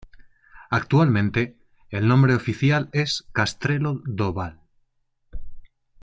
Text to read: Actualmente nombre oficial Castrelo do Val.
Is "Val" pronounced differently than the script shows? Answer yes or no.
no